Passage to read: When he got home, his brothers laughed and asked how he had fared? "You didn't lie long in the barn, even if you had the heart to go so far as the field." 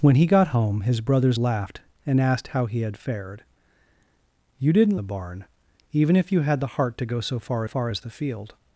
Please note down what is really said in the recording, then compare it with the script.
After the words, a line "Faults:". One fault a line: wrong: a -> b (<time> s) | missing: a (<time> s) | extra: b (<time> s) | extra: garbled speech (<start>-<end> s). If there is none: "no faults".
When he got home, his brothers laughed and asked how he had fared? "You didn't the barn, even if you had the heart to go so far far as the field."
Faults:
missing: lie long in (5.0 s)
extra: far (7.6 s)